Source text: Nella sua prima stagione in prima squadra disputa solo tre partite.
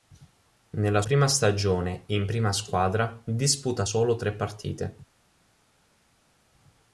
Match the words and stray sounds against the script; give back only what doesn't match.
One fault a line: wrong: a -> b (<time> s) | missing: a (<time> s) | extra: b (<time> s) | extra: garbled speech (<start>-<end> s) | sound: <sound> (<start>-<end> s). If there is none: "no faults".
missing: sua (1.0 s)